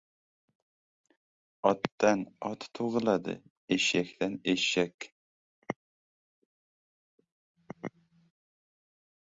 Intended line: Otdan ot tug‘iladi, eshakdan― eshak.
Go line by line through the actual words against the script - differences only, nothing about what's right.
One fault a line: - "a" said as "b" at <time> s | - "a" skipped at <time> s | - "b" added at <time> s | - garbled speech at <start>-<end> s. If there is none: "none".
none